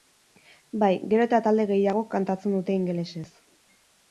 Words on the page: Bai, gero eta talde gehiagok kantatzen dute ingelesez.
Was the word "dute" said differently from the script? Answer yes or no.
no